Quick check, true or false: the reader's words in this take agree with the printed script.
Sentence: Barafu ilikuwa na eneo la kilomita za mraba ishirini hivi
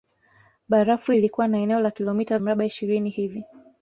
false